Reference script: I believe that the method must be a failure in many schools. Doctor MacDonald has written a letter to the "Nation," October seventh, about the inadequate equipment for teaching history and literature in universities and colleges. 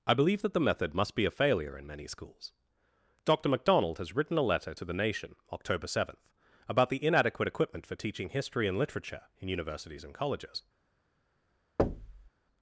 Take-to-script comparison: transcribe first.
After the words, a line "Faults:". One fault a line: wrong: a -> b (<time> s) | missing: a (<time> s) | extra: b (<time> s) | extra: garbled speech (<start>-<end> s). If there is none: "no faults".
I believe that the method must be a failure in many schools. Doctor MacDonald has written a letter to the "Nation," October seventh, about the inadequate equipment for teaching history and literature in universities and colleges.
Faults:
no faults